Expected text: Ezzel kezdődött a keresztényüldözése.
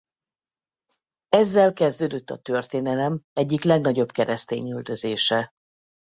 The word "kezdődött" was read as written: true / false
true